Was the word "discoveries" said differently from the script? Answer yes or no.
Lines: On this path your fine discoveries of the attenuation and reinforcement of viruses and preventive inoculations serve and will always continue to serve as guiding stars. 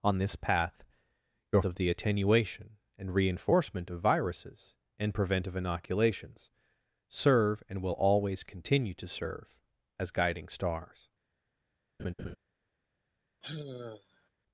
yes